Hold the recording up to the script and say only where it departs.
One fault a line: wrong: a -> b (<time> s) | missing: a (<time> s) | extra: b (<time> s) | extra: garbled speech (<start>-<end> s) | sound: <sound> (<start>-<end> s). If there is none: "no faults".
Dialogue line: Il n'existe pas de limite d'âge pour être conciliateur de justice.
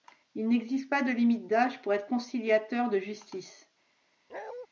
sound: bark (4.3-4.7 s)